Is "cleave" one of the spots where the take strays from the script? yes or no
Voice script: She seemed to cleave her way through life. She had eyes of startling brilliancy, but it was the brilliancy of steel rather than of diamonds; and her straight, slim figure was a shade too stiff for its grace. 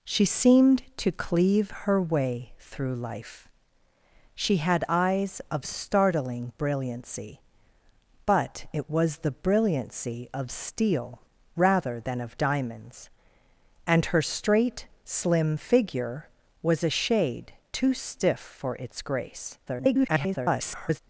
no